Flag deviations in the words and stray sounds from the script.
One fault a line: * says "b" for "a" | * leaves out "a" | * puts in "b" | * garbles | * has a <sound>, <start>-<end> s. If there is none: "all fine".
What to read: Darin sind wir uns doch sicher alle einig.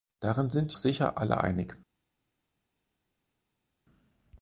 * leaves out "wir uns doch"